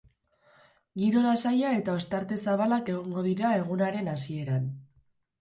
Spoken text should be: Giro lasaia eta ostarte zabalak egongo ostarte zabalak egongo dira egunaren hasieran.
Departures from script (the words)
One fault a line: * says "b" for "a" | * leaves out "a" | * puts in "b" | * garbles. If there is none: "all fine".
* leaves out "ostarte zabalak egongo"